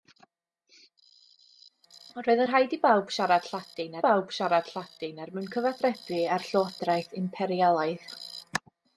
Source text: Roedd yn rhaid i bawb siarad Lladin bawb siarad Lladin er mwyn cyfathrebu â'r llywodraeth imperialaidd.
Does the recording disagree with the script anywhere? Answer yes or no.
no